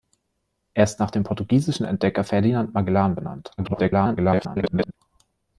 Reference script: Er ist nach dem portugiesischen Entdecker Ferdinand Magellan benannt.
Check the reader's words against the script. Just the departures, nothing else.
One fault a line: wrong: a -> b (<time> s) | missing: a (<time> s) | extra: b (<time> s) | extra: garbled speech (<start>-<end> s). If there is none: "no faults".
extra: garbled speech (3.6-4.9 s)